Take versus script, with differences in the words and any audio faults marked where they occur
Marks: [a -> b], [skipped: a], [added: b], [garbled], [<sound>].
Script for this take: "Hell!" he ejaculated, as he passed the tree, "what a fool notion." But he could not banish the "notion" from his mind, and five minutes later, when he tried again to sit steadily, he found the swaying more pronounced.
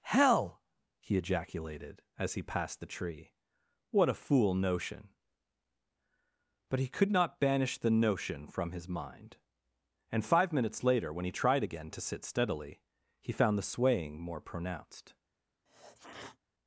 "Hell!" he ejaculated, as he passed the tree, "what a fool notion." But he could not banish the "notion" from his mind, and five minutes later, when he tried again to sit steadily, he found the swaying more pronounced. [sneeze]